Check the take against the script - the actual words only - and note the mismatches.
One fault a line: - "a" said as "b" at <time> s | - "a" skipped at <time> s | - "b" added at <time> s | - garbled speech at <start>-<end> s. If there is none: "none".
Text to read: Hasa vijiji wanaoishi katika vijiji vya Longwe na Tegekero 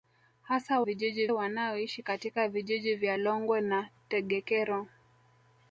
none